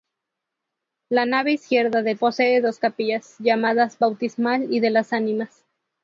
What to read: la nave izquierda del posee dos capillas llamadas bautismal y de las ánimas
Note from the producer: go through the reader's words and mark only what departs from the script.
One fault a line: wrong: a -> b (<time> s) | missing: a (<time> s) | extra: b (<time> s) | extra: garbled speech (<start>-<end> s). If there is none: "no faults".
no faults